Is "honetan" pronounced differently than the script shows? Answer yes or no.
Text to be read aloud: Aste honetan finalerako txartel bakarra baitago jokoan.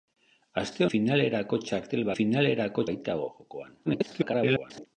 yes